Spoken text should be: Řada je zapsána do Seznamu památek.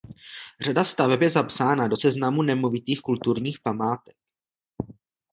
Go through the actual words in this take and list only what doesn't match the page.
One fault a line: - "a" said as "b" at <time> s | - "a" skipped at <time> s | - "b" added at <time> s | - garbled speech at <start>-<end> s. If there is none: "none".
- "staveb" added at 0.8 s
- "nemovitých kulturních" added at 2.4 s